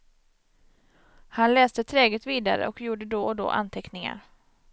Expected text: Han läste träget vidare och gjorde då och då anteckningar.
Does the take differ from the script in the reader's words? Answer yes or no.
no